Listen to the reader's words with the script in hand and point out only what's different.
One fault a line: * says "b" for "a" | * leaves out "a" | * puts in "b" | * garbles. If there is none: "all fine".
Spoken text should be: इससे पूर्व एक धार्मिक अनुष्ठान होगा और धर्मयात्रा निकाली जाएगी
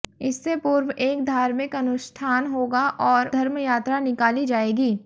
all fine